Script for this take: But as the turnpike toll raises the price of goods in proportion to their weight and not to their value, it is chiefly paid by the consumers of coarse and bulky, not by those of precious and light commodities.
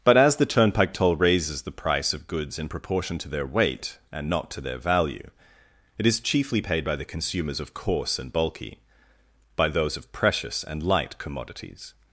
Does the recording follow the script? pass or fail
fail